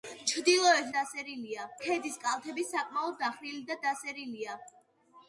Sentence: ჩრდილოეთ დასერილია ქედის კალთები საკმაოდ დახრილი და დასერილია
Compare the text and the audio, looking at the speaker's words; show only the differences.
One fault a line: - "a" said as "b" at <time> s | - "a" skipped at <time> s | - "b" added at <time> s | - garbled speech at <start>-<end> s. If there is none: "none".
none